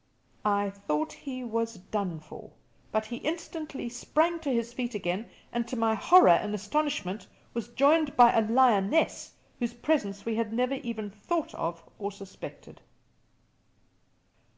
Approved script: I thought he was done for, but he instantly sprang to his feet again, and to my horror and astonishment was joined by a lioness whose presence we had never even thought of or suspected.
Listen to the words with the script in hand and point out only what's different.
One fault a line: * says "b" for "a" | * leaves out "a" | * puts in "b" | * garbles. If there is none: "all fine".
all fine